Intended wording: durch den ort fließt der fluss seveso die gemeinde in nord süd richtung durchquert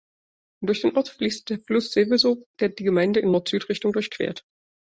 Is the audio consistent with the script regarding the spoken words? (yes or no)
no